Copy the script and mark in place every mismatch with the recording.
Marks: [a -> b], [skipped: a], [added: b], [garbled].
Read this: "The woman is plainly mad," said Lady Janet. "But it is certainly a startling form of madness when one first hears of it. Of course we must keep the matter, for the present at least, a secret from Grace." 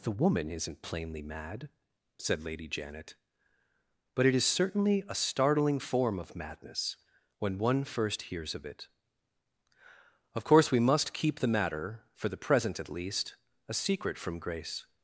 "The woman [is -> isn't] plainly mad," said Lady Janet. "But it is certainly a startling form of madness when one first hears of it. Of course we must keep the matter, for the present at least, a secret from Grace."